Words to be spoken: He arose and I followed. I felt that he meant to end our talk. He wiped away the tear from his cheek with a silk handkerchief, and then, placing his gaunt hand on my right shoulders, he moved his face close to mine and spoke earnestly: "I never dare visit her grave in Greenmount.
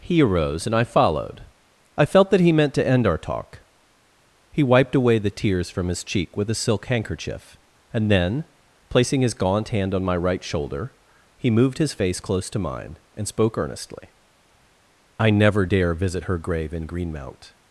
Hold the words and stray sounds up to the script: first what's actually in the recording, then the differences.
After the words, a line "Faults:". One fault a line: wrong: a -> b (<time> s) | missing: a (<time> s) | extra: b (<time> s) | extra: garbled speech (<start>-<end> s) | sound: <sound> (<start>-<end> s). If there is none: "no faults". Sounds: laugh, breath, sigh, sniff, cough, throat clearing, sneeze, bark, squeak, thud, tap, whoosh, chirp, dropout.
He arose and I followed. I felt that he meant to end our talk. He wiped away the tears from his cheek with a silk handkerchief, and then, placing his gaunt hand on my right shoulder, he moved his face close to mine and spoke earnestly: "I never dare visit her grave in Greenmount.
Faults:
wrong: tear -> tears (5.3 s)
wrong: shoulders -> shoulder (10.4 s)